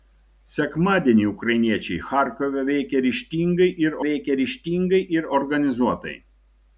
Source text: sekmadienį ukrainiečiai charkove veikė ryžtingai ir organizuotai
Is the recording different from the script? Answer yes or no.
yes